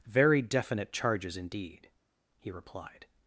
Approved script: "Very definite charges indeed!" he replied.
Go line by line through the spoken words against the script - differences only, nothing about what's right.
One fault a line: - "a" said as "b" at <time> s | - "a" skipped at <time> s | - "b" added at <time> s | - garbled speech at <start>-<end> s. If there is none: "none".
none